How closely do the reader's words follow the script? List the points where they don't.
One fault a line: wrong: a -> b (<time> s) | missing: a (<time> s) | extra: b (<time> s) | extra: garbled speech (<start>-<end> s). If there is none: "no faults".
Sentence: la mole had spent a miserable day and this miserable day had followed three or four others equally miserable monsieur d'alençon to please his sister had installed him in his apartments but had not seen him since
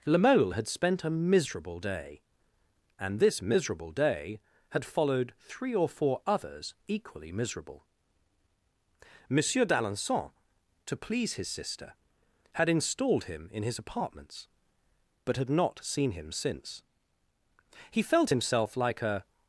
extra: he felt himself like a (17.9 s)